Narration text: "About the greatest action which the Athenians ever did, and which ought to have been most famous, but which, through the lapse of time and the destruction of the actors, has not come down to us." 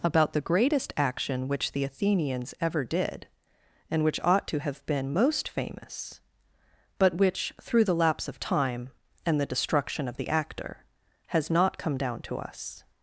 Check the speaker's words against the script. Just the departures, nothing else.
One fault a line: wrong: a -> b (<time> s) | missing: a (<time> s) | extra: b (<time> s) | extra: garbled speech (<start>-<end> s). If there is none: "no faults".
wrong: actors -> actor (10.3 s)